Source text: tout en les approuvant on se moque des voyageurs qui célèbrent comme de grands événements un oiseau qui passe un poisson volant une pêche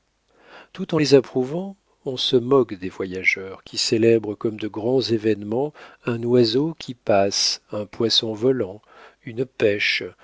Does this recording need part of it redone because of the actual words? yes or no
no